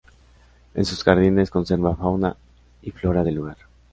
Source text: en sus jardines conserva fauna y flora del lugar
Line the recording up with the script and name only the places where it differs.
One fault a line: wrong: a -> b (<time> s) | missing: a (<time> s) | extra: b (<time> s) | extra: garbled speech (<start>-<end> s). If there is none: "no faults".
no faults